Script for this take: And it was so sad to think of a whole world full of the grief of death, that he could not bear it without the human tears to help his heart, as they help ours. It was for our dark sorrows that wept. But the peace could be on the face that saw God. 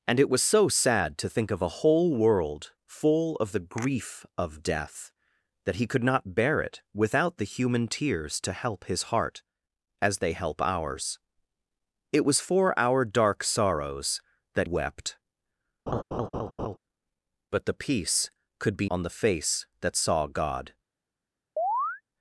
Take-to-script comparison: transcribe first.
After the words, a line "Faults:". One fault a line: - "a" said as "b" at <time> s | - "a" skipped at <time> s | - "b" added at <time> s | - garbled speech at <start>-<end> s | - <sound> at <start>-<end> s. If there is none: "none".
And it was so sad to think of a whole world full of the grief of death, that he could not bear it without the human tears to help his heart, as they help ours. It was for our dark sorrows that wept. But the peace could be on the face that saw God.
Faults:
- laugh at 15.9-16.8 s
- chirp at 21.6-22.0 s